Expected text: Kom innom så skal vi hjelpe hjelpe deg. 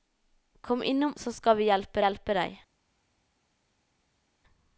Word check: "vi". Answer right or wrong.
right